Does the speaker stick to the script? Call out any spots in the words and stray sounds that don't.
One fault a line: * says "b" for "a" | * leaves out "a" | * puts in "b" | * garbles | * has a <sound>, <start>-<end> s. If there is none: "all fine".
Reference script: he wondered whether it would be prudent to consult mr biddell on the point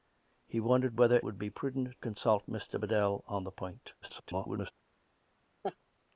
* leaves out "it"
* leaves out "to"
* garbles
* has a laugh, 5.6-5.8 s